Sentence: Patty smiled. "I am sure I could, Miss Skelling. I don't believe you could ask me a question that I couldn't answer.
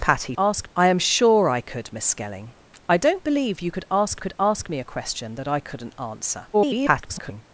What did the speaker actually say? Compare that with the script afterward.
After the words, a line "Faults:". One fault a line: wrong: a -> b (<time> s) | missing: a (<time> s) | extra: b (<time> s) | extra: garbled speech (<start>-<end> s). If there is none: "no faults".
Patty ask. "I am sure I could, Miss Skelling. I don't believe you could ask could ask me a question that I couldn't answer. [garbled]
Faults:
wrong: smiled -> ask (0.4 s)
extra: could ask (4.2 s)
extra: garbled speech (6.5-7.4 s)